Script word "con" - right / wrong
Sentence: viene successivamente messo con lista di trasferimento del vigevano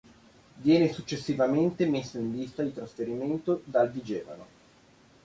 wrong